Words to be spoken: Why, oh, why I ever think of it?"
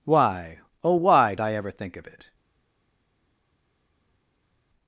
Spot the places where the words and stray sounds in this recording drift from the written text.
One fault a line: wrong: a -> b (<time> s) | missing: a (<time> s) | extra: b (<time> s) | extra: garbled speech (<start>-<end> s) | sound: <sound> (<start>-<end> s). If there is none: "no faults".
no faults